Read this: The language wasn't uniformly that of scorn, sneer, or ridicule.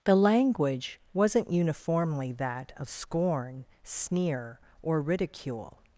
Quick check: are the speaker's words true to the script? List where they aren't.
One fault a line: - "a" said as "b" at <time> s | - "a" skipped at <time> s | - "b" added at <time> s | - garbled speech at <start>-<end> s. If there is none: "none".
none